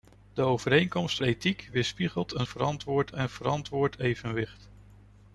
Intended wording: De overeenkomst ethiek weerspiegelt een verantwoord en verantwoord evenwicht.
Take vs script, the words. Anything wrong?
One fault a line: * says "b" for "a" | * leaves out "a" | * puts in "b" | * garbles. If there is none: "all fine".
all fine